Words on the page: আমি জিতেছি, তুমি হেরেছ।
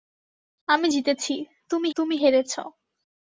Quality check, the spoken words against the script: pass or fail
fail